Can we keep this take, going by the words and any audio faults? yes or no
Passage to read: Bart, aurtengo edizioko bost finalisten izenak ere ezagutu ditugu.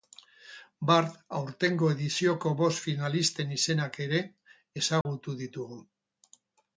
no